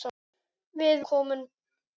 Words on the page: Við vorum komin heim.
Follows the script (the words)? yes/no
no